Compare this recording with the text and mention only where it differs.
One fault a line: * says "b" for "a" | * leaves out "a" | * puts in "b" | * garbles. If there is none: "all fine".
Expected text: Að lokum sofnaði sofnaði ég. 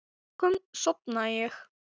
* leaves out "sofnaði"